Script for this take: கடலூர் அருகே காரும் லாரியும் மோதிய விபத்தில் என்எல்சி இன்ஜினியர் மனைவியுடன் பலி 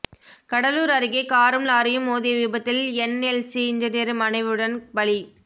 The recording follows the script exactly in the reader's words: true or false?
true